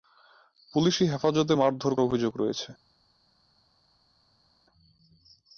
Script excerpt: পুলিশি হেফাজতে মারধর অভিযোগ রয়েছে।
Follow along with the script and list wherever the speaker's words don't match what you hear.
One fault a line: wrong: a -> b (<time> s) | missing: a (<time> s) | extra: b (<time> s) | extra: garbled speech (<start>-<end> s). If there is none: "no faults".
no faults